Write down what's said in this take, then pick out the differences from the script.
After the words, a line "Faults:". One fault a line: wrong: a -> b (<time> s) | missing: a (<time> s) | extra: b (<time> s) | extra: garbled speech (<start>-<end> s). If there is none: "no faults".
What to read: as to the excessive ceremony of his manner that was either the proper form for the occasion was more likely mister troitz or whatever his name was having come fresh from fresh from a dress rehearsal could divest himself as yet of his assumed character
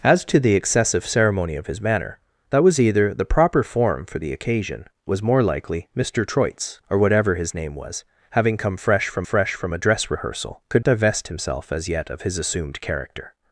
as to the excessive ceremony of his manner that was either the proper form for the occasion was more likely mister troitz or whatever his name was having come fresh from fresh from a dress rehearsal could divest himself as yet of his assumed character
Faults:
no faults